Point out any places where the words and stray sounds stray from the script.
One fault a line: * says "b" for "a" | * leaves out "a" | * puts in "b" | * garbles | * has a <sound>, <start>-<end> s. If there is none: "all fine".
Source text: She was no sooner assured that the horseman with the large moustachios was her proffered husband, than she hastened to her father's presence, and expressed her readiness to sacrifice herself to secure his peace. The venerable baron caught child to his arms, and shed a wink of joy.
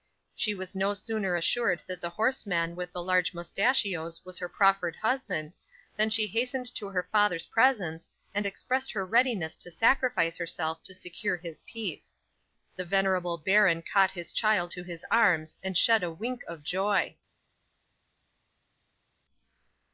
* puts in "his"